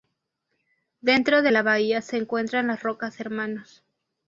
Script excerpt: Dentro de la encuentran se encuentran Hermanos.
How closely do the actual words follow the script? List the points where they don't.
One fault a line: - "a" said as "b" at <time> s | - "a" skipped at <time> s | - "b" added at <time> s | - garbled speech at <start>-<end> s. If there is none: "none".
- "encuentran" said as "bahía" at 1.6 s
- "las Rocas" added at 2.7 s